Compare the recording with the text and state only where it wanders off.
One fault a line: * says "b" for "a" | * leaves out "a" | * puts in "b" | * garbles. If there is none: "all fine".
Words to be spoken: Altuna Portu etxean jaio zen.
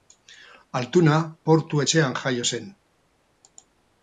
all fine